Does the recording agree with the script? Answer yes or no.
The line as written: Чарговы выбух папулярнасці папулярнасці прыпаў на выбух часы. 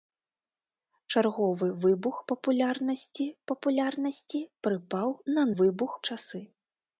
yes